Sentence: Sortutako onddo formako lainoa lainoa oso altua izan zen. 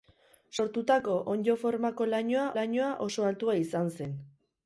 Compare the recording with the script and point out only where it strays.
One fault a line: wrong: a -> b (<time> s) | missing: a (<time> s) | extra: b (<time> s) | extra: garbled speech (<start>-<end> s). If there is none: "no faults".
no faults